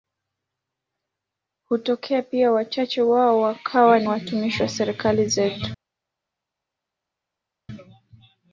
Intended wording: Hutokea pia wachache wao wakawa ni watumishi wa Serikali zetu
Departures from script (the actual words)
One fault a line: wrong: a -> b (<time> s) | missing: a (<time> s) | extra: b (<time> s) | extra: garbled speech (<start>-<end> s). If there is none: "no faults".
no faults